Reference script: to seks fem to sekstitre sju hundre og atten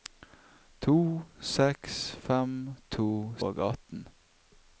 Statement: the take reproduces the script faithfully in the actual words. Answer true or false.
false